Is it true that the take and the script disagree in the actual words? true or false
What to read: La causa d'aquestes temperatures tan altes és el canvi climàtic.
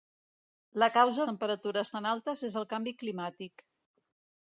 true